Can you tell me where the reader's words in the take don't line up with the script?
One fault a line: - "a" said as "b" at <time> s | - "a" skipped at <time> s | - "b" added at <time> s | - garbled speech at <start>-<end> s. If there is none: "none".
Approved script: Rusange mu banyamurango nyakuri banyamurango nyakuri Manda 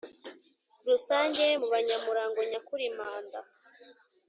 - "banyamurango nyakuri" skipped at 2.8 s